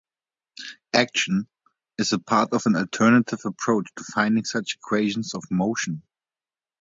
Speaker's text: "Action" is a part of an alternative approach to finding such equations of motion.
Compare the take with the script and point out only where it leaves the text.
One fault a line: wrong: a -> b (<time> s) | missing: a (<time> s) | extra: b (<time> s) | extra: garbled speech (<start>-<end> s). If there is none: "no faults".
no faults